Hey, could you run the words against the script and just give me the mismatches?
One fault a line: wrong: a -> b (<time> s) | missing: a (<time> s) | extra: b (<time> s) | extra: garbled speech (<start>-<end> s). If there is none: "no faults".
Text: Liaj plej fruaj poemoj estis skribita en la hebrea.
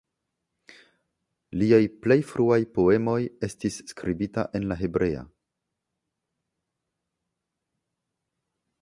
no faults